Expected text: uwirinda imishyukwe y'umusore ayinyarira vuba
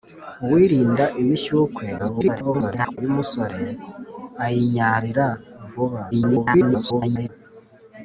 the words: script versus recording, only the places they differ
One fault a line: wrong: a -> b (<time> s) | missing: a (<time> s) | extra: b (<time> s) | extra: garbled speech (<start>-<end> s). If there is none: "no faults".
extra: garbled speech (2.0-3.0 s)
extra: garbled speech (6.1-7.3 s)